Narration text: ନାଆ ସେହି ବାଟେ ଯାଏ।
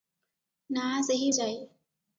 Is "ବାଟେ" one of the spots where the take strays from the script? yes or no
yes